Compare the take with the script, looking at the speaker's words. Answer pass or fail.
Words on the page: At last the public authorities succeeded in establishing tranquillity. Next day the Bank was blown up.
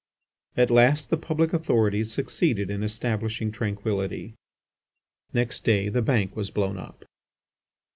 pass